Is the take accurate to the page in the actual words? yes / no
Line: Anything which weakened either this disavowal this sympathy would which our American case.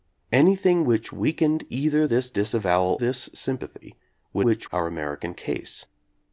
yes